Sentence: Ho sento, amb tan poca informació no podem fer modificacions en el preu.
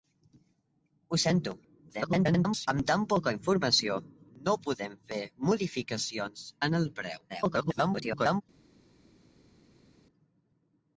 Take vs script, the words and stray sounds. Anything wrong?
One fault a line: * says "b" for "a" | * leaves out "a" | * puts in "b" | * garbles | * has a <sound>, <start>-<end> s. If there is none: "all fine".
* garbles
* garbles